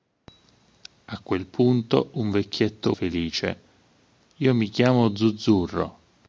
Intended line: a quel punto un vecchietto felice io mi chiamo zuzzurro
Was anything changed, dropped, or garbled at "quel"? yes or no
no